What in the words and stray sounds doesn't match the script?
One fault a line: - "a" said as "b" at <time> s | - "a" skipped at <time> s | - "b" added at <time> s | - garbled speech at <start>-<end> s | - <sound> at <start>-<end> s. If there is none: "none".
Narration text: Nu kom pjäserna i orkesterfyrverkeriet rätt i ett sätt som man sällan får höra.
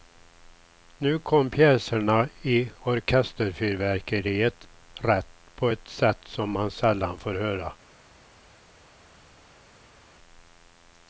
- "i" said as "på" at 5.5 s